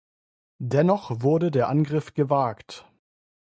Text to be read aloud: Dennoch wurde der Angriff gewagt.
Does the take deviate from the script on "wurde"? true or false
false